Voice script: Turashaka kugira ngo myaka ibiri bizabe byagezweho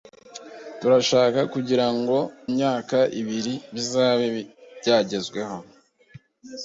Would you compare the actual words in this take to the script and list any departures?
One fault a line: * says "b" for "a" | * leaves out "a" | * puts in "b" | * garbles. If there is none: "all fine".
all fine